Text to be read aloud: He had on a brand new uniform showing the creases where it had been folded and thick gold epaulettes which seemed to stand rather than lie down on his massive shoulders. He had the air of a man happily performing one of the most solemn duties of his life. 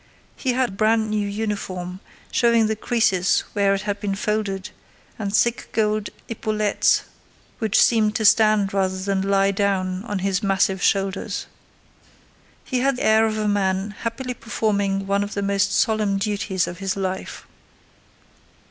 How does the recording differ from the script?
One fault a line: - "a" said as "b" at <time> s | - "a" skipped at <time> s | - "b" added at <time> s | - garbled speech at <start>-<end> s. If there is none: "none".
- "on" skipped at 0.7 s
- "the" skipped at 13.0 s